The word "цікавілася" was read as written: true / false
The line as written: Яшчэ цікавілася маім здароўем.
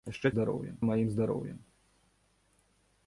false